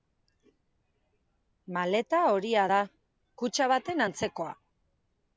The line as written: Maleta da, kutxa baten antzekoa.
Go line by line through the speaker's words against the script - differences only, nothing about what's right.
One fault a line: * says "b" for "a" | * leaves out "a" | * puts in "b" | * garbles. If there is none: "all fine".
* puts in "horia"